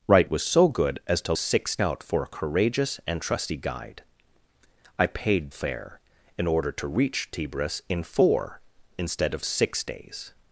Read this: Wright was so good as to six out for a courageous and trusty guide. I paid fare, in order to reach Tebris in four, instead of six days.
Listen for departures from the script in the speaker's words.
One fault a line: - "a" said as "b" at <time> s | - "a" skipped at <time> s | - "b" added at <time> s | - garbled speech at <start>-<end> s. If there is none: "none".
none